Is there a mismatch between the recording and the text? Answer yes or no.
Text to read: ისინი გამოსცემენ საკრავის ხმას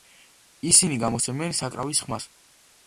no